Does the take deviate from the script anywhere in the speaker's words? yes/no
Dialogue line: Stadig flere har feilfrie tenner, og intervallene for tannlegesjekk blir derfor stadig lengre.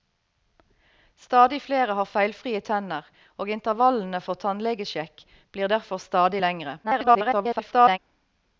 yes